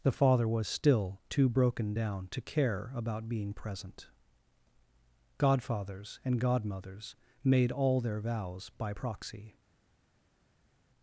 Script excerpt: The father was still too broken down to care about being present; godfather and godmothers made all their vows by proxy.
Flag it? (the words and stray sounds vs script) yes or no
yes